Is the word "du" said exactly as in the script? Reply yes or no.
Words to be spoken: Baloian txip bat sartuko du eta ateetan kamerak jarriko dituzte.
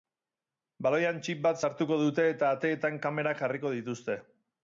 no